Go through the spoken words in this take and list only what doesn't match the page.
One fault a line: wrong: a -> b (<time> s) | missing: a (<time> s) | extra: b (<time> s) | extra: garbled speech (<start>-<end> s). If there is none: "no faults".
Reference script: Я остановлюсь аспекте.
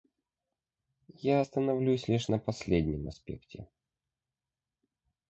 extra: лишь на последнем (2.1 s)